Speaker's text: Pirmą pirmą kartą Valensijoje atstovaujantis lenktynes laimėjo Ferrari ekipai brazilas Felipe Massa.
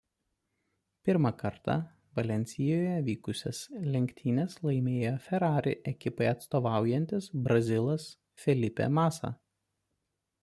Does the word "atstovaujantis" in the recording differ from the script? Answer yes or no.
yes